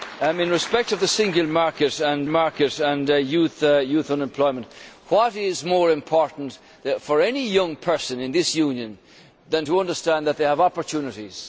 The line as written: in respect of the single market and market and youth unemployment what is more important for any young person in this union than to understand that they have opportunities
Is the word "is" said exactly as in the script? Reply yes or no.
yes